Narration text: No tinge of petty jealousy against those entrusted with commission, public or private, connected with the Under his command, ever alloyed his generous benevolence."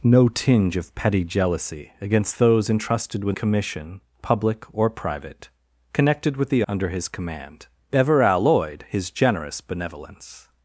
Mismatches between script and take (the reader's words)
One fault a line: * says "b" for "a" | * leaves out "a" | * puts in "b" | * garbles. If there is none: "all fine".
all fine